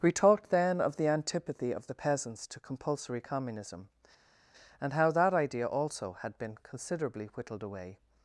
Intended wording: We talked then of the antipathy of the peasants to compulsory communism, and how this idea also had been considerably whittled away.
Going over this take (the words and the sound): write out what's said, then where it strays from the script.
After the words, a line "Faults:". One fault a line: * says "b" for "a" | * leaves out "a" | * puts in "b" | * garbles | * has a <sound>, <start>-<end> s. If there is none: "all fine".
We talked then of the antipathy of the peasants to compulsory communism, and how that idea also had been considerably whittled away.
Faults:
* says "that" for "this"